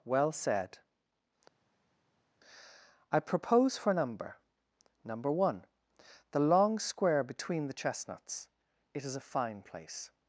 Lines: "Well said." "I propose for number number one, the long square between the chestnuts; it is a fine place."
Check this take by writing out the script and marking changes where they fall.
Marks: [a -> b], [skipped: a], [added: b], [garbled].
"Well said." "I propose for number number one, the long square between the chestnuts; it is a fine place."